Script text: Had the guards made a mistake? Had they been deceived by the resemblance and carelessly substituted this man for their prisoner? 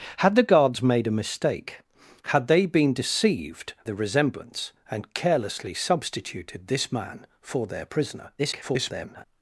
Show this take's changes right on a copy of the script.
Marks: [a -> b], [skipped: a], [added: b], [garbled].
Had the guards made a mistake? Had they been deceived [skipped: by] the resemblance and carelessly substituted this man for their prisoner? [garbled]